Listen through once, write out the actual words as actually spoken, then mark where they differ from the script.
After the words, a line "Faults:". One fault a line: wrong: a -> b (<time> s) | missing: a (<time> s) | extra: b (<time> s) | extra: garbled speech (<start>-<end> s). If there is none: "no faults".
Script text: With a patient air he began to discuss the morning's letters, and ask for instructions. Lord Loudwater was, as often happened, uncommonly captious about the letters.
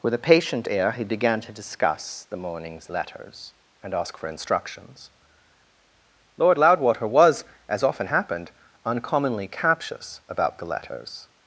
With a patient air he began to discuss the morning's letters, and ask for instructions. Lord Loudwater was, as often happened, uncommonly captious about the letters.
Faults:
no faults